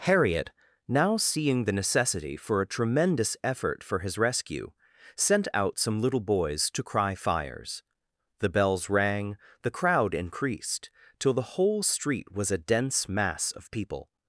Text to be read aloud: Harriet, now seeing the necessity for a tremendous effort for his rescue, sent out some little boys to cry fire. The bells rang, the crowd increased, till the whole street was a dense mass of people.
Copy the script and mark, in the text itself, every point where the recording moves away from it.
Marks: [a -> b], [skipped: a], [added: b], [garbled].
Harriet, now seeing the necessity for a tremendous effort for his rescue, sent out some little boys to cry [fire. -> fires] The bells rang, the crowd increased, till the whole street was a dense mass of people.